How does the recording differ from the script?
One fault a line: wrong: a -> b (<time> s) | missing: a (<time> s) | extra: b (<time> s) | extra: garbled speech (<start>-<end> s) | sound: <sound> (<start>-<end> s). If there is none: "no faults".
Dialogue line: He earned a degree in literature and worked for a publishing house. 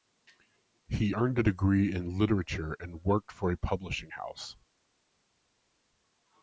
no faults